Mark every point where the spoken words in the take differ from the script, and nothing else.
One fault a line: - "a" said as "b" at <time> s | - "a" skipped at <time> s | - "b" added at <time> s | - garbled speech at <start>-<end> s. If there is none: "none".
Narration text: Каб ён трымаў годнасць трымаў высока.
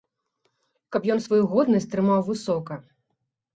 - "трымаў" said as "сваю" at 1.2 s